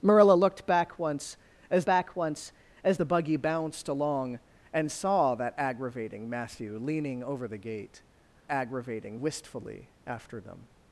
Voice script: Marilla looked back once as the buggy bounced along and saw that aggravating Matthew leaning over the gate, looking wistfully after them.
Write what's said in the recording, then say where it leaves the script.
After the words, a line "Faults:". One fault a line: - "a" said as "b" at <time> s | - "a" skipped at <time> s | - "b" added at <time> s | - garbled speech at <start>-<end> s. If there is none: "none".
Marilla looked back once as back once as the buggy bounced along and saw that aggravating Matthew leaning over the gate, aggravating wistfully after them.
Faults:
- "back once as" added at 1.8 s
- "looking" said as "aggravating" at 8.5 s